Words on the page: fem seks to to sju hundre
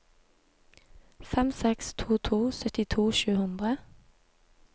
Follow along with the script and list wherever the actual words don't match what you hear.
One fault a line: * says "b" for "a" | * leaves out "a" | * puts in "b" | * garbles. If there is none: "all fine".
* puts in "syttito"